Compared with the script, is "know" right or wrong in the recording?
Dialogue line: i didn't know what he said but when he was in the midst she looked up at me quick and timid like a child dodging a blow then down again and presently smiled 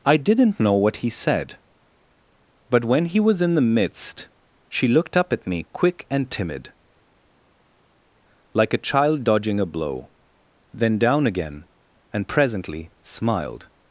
right